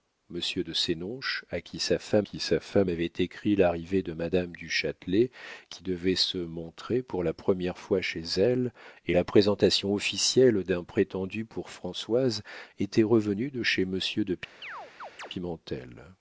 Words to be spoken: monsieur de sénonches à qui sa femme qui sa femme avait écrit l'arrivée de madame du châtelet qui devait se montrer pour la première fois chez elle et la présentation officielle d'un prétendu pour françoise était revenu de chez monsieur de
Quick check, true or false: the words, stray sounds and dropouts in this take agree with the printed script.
false